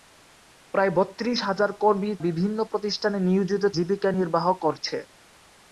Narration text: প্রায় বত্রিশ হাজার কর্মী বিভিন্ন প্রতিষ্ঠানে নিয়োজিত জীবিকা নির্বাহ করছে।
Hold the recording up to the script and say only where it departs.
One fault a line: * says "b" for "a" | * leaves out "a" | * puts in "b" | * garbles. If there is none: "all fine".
all fine